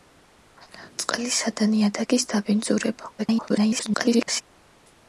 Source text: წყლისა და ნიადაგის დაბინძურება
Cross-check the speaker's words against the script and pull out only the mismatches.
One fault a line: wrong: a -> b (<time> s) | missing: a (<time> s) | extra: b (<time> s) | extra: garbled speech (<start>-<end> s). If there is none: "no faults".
extra: garbled speech (3.2-4.4 s)